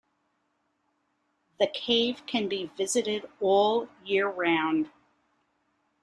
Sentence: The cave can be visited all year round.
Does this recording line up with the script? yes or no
yes